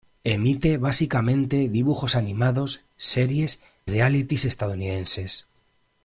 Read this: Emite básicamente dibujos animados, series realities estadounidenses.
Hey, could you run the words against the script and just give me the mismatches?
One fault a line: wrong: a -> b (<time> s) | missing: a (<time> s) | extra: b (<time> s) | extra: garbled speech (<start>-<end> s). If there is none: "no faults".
no faults